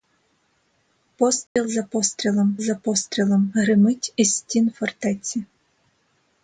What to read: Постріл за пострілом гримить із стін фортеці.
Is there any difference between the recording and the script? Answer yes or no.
yes